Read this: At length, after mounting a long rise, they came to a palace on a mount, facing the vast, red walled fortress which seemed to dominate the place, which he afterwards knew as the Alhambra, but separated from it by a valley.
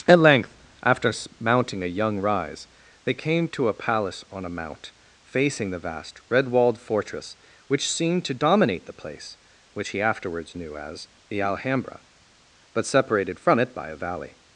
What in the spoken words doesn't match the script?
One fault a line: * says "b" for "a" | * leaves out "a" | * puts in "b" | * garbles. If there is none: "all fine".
* says "young" for "long"